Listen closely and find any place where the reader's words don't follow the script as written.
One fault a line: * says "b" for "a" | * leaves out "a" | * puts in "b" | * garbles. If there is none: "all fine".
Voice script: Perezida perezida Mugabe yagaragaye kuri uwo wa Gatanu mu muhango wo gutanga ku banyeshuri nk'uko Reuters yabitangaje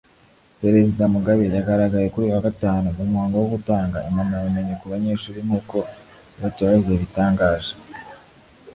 * leaves out "perezida"
* says "uyu" for "uwo"
* puts in "impamyabumenyi"